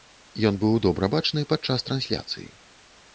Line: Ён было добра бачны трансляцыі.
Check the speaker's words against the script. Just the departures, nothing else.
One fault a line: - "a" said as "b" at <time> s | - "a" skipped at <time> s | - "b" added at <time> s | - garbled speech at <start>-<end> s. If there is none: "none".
- "было" said as "быў" at 0.6 s
- "падчас" added at 1.5 s